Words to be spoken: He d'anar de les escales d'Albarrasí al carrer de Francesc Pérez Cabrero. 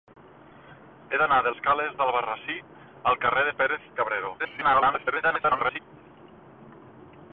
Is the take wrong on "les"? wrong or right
wrong